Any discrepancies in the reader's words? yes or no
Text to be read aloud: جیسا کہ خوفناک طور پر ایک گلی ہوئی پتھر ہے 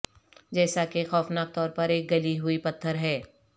no